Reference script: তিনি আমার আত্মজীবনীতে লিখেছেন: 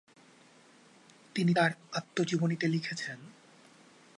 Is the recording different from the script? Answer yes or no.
yes